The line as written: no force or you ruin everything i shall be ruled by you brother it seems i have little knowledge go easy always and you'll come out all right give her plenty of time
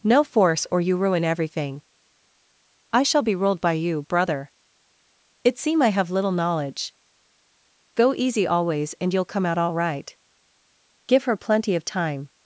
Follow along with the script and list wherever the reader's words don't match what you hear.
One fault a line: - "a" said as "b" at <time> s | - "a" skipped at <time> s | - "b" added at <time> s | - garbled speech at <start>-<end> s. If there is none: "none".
- "seems" said as "seem" at 5.6 s